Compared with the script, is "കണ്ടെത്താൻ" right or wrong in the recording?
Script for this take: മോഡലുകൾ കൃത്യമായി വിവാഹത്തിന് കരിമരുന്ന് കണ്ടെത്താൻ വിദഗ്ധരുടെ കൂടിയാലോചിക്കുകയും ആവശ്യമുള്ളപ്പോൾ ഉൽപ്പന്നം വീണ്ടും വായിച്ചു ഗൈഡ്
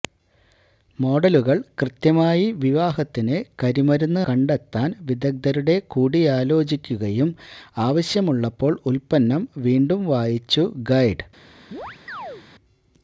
right